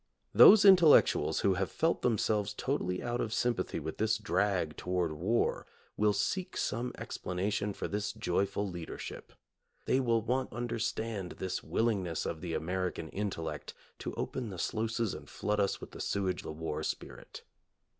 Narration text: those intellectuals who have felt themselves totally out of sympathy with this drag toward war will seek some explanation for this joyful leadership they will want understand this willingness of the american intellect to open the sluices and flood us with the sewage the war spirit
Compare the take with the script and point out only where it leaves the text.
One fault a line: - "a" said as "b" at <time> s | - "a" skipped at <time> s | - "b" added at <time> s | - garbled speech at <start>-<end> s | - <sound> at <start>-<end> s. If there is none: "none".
none